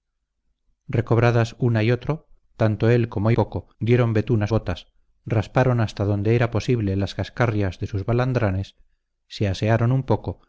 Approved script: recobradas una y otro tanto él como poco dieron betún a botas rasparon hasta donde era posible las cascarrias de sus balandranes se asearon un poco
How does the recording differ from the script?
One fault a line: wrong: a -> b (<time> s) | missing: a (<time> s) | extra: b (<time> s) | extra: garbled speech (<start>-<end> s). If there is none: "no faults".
no faults